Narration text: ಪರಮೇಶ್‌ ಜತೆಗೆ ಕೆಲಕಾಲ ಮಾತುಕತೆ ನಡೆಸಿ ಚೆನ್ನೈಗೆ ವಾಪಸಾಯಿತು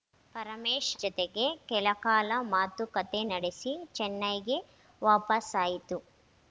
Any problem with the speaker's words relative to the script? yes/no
no